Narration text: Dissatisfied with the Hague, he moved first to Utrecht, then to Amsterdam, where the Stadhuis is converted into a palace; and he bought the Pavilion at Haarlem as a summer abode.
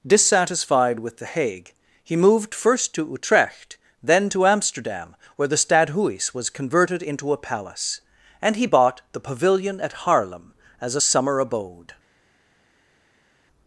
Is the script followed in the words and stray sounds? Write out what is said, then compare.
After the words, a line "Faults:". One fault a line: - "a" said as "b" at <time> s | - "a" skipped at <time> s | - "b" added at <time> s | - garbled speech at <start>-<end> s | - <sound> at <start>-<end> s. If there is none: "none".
Dissatisfied with the Hague, he moved first to Utrecht, then to Amsterdam, where the Stadhuis was converted into a palace; and he bought the Pavilion at Haarlem as a summer abode.
Faults:
- "is" said as "was" at 6.3 s